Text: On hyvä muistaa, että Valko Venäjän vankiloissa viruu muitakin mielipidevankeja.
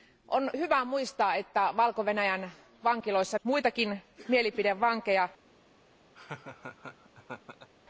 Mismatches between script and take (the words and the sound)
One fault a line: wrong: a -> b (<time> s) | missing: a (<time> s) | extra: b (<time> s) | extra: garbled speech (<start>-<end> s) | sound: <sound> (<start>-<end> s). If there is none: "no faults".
missing: viruu (3.4 s)
sound: laugh (6.2-7.7 s)